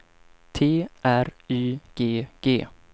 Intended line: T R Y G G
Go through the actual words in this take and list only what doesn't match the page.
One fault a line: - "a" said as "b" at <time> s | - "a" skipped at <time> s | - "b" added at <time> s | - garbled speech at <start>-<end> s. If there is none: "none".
none